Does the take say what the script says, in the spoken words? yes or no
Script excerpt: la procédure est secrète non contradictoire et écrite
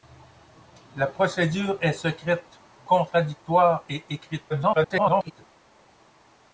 no